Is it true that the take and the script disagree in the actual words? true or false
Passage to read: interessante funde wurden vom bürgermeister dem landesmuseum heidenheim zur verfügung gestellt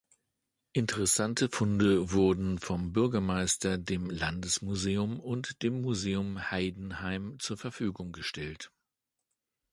true